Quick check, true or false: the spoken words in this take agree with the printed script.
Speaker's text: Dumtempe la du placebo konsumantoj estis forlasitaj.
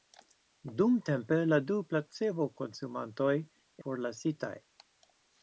false